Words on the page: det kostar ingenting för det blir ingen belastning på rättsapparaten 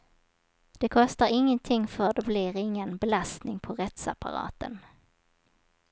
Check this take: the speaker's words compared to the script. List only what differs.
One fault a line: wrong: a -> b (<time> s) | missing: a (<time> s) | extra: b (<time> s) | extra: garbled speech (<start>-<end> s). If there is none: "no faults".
no faults